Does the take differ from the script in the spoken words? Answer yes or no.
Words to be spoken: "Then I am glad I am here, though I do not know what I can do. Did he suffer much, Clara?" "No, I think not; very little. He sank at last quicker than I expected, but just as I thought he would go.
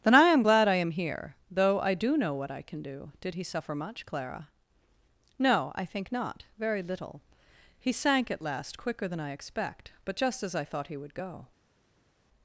yes